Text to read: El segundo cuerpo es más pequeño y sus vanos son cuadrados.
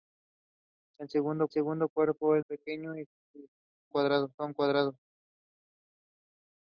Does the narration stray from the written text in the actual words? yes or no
yes